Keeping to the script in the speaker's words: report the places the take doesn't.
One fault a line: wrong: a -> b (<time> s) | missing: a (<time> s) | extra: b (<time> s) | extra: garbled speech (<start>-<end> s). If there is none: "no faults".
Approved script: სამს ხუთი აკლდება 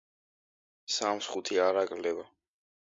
extra: არ (1.7 s)